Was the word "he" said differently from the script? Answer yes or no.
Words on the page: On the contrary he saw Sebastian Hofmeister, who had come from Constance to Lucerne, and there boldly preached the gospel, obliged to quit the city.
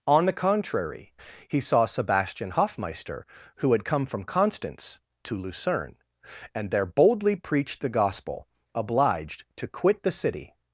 no